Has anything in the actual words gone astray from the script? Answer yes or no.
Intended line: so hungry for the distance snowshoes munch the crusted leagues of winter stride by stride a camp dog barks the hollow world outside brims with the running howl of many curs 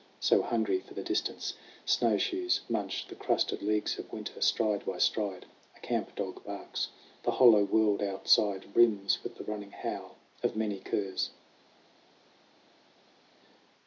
no